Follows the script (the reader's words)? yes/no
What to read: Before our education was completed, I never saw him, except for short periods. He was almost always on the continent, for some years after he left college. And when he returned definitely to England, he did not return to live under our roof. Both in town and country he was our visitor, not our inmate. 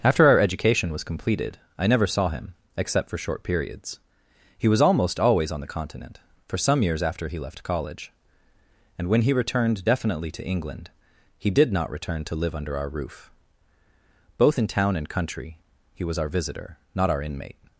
no